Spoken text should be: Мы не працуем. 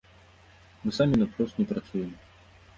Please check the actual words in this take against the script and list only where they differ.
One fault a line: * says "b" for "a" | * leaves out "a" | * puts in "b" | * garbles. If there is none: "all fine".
* puts in "самі наўпрост"